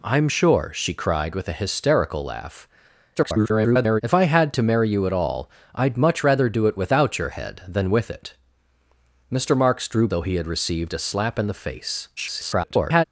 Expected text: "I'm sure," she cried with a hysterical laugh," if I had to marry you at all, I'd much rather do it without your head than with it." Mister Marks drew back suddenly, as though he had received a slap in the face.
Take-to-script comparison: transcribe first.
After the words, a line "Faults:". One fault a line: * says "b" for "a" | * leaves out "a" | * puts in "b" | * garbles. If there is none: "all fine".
"I'm sure," she cried with a hysterical laugh," [garbled] if I had to marry you at all, I'd much rather do it without your head than with it." Mister Marks drew though he had received a slap in the face. [garbled]
Faults:
* garbles
* leaves out "back suddenly as"
* garbles